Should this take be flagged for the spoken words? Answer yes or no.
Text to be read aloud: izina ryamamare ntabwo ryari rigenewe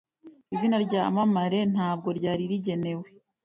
no